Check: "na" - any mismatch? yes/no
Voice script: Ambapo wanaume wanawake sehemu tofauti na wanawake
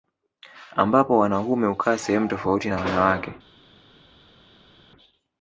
no